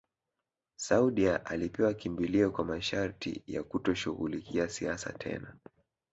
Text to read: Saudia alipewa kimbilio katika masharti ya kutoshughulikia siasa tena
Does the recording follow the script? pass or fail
fail